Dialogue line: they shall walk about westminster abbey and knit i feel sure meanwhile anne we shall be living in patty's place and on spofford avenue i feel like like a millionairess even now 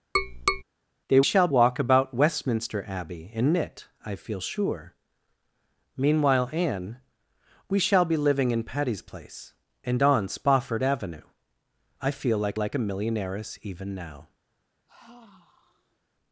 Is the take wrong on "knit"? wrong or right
right